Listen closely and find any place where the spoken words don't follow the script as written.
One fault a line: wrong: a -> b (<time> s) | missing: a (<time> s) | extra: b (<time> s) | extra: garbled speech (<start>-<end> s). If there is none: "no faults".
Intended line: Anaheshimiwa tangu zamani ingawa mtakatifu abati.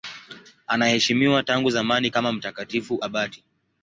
wrong: ingawa -> kama (2.1 s)